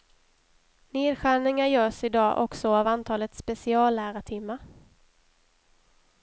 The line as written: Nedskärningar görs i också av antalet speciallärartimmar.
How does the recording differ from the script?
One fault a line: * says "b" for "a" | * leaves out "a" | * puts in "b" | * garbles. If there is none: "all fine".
* puts in "dag"